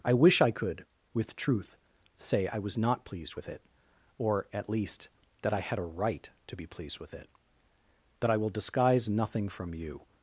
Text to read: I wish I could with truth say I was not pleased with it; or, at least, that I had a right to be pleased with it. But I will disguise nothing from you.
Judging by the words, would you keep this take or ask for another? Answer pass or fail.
pass